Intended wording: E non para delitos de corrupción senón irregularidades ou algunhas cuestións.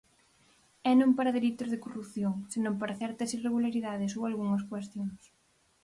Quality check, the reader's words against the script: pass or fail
fail